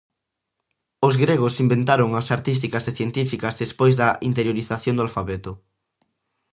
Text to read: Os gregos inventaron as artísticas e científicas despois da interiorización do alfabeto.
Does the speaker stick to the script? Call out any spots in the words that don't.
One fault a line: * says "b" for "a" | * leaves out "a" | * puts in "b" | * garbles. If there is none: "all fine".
all fine